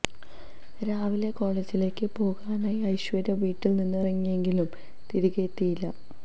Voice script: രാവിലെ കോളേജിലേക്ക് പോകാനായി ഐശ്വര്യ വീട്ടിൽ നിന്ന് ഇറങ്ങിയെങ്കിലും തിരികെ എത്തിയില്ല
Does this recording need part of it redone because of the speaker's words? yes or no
no